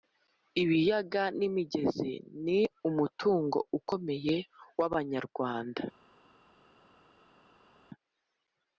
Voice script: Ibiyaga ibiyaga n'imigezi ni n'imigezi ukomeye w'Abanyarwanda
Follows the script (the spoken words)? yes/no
no